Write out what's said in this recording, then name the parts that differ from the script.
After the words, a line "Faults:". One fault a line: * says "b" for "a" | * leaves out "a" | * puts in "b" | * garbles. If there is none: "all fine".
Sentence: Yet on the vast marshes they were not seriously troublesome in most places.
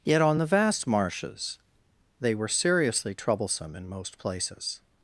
Yet on the vast marshes they were seriously troublesome in most places.
Faults:
* leaves out "not"